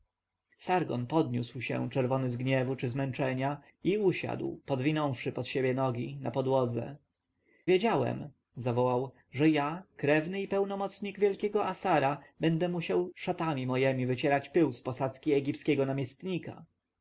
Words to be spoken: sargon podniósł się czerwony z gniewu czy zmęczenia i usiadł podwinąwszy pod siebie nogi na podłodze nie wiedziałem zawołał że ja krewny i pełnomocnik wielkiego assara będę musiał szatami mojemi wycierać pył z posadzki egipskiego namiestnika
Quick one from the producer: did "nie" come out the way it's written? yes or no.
no